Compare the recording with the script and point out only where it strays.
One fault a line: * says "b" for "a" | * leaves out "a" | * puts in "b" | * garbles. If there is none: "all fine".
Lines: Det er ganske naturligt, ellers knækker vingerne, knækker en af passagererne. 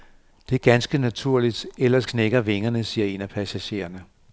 * says "siger" for "knækker"